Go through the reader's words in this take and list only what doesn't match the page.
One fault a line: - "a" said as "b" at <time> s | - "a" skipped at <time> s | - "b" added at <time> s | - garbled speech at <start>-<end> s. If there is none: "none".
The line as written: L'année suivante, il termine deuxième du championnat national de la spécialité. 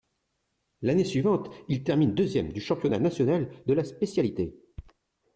none